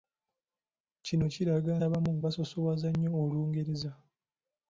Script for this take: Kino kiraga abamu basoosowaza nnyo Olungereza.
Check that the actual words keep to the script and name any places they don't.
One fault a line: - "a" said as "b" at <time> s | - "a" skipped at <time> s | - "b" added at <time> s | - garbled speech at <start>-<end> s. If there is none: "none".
none